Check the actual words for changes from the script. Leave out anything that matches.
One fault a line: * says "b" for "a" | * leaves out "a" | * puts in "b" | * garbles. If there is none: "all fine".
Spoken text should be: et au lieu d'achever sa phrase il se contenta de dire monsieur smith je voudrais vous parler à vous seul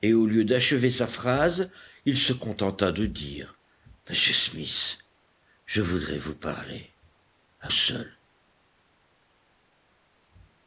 * leaves out "vous"